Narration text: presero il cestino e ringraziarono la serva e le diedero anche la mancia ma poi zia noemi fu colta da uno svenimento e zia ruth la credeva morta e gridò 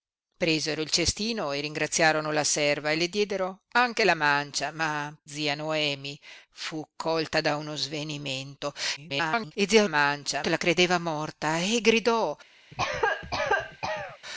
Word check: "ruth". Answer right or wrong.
wrong